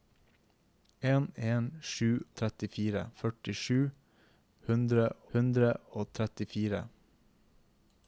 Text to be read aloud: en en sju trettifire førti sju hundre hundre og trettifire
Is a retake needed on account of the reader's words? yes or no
no